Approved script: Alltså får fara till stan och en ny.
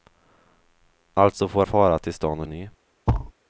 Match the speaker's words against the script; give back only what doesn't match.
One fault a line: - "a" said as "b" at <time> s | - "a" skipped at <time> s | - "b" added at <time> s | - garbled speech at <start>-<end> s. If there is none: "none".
none